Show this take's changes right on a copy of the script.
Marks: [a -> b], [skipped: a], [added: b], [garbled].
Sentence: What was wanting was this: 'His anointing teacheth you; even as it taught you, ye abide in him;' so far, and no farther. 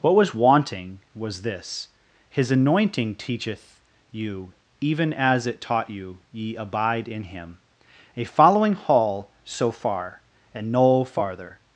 What was wanting was this: 'His anointing teacheth you; even as it taught you, ye abide in him;' [added: a following hall] so far, and no farther.